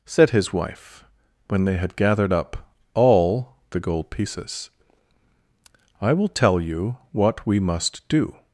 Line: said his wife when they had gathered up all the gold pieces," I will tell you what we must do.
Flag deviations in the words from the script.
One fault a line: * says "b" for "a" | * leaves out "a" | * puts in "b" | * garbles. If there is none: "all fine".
all fine